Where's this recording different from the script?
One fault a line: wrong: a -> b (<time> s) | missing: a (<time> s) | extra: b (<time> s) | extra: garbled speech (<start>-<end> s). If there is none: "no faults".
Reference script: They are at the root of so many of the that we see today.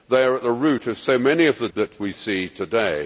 no faults